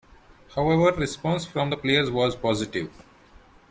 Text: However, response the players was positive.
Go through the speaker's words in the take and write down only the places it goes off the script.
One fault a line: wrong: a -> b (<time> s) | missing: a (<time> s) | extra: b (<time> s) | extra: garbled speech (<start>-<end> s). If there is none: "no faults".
extra: from (1.4 s)